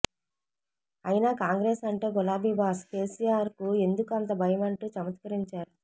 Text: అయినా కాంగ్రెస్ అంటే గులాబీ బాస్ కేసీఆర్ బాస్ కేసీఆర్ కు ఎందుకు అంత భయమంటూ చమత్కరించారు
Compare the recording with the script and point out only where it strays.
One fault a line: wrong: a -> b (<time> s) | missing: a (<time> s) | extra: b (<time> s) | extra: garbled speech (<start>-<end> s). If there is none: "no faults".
missing: బాస్ కేసీఆర్ (3.5 s)